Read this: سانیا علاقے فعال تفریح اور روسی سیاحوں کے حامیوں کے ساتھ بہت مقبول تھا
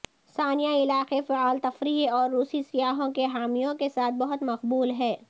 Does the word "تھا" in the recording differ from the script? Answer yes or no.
yes